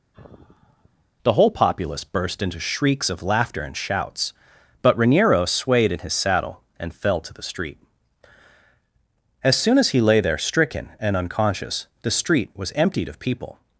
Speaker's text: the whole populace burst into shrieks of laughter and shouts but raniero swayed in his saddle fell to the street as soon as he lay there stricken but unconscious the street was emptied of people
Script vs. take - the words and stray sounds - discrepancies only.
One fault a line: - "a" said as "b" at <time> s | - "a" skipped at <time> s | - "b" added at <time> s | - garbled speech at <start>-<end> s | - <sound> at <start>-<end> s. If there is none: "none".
- sigh at 0.1-1.1 s
- "and" added at 6.8 s
- "but" said as "and" at 11.0 s